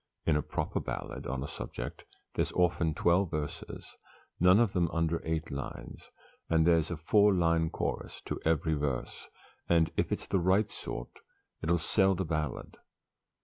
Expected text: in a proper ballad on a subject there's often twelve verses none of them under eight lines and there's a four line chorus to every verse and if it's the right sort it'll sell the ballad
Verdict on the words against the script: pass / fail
pass